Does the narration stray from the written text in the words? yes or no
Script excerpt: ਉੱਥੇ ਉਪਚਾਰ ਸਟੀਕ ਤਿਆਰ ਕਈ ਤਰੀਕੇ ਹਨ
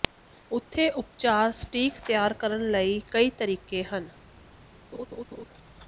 yes